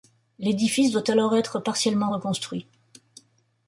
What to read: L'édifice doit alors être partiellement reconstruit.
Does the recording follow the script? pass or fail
pass